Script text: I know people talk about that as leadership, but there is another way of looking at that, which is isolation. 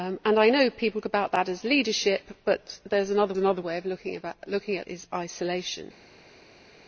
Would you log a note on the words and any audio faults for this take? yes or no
yes